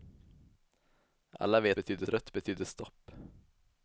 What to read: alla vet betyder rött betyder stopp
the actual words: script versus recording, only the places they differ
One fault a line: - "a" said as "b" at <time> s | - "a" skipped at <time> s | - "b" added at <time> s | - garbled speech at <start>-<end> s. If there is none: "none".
none